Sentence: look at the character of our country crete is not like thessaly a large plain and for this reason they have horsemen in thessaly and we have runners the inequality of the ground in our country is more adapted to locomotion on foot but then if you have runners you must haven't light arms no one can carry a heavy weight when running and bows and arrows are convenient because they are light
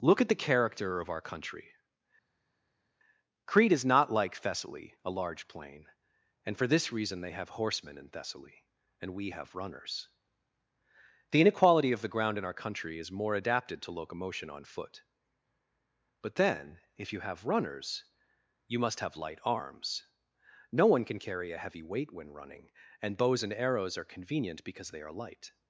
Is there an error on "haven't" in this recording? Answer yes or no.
yes